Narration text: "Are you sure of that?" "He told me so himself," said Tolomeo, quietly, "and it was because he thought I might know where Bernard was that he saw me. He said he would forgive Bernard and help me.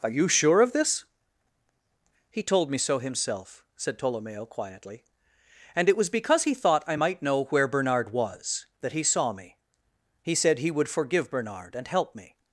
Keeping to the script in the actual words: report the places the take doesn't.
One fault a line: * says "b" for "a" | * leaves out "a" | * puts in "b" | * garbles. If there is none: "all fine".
* says "this" for "that"